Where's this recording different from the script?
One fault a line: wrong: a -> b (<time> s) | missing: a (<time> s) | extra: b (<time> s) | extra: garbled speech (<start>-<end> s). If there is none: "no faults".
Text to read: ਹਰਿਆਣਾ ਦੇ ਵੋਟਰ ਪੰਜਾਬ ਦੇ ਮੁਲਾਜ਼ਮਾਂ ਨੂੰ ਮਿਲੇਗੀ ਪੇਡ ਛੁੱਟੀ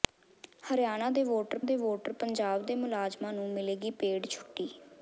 extra: ਦੇ ਵੋਟਰ (1.6 s)